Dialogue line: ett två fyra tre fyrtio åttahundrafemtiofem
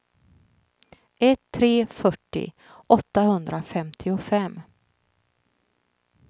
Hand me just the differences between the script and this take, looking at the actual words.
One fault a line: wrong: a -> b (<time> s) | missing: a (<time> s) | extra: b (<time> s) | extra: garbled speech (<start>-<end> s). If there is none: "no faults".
missing: två fyra (1.4 s)